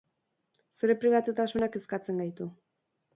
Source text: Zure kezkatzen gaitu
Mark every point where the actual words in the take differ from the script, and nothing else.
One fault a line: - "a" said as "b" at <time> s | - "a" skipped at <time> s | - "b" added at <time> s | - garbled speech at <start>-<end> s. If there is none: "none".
- "pribatutasunak" added at 1.0 s